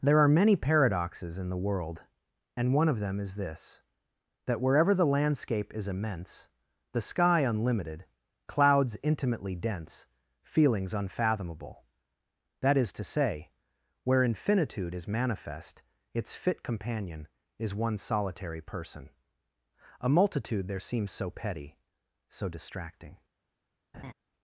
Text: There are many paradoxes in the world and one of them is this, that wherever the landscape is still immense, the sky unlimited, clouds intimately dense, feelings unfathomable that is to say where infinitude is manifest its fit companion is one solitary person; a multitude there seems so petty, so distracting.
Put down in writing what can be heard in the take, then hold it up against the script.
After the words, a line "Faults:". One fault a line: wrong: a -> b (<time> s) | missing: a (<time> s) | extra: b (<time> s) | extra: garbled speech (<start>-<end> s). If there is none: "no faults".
There are many paradoxes in the world and one of them is this, that wherever the landscape is immense, the sky unlimited, clouds intimately dense, feelings unfathomable that is to say where infinitude is manifest its fit companion is one solitary person; a multitude there seems so petty, so distracting.
Faults:
missing: still (5.9 s)